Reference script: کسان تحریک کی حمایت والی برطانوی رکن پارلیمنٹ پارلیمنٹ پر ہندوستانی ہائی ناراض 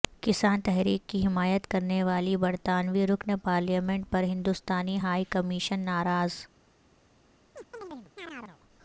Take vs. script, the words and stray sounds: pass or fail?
fail